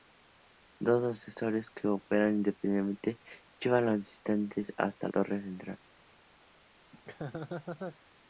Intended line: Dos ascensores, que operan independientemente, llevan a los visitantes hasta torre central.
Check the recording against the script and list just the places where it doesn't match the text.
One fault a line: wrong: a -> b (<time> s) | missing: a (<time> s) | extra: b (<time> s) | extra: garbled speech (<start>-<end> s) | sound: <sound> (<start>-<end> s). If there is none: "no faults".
sound: laugh (6.9-8.0 s)